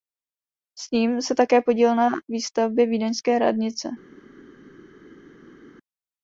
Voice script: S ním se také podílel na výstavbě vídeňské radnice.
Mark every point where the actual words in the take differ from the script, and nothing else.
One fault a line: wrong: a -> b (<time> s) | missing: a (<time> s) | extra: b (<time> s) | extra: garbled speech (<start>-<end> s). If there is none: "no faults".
no faults